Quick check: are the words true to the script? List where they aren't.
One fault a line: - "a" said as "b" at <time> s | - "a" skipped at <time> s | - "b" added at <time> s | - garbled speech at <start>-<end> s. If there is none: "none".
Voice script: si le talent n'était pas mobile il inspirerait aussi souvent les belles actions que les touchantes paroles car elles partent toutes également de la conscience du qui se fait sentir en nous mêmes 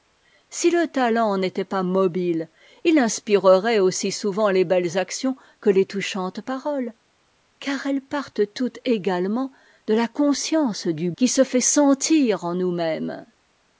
none